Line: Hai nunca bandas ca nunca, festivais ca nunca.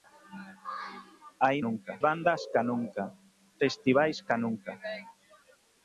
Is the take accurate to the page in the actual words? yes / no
yes